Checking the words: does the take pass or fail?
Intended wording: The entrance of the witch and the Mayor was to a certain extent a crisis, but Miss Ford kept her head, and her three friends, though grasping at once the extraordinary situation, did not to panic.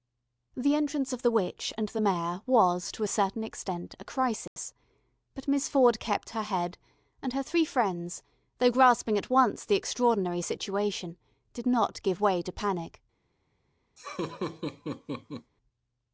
fail